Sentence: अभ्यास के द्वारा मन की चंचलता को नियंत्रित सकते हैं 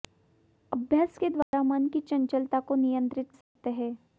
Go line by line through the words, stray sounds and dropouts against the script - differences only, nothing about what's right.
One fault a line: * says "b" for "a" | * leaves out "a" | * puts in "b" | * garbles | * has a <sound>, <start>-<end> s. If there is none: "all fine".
* has a dropout, 1.4-1.5 s
* has a dropout, 3.4-3.6 s